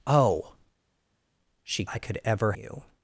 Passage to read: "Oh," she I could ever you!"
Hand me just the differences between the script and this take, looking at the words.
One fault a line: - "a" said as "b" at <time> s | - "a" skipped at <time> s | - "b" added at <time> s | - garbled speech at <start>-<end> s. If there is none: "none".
none